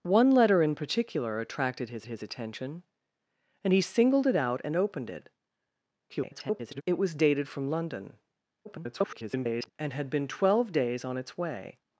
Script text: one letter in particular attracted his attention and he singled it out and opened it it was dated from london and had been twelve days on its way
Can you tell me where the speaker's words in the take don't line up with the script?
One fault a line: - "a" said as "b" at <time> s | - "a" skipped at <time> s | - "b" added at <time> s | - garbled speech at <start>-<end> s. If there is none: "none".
- "his" added at 2.1 s
- garbled speech at 6.1-6.8 s
- garbled speech at 8.6-9.7 s